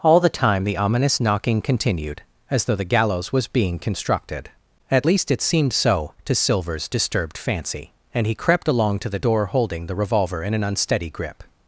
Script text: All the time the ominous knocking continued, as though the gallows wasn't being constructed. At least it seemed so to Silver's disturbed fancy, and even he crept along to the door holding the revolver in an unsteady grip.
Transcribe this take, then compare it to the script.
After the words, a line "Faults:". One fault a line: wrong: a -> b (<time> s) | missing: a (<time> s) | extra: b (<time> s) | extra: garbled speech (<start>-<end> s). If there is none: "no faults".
All the time the ominous knocking continued, as though the gallows was being constructed. At least it seemed so to Silver's disturbed fancy, and he crept along to the door holding the revolver in an unsteady grip.
Faults:
wrong: wasn't -> was (3.3 s)
missing: even (8.3 s)